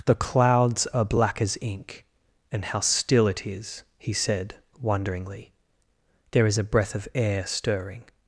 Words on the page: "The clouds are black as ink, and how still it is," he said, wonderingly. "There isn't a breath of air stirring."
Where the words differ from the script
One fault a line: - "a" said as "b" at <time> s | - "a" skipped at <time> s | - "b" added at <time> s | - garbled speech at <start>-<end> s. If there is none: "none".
- "isn't" said as "is" at 6.5 s